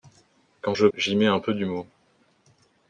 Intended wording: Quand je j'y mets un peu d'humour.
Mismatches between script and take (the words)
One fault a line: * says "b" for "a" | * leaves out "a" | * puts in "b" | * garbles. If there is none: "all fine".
all fine